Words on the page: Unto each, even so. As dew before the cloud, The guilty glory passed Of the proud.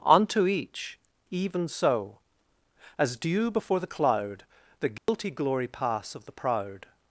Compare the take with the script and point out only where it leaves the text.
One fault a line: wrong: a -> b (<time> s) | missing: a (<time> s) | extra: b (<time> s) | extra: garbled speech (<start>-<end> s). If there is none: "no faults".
wrong: passed -> pass (5.7 s)